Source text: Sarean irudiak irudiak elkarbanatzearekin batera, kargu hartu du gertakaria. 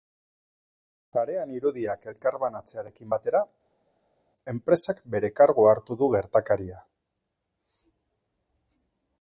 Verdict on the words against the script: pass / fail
fail